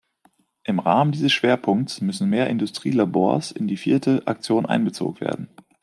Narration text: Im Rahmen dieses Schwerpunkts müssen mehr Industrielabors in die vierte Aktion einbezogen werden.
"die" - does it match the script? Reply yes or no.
yes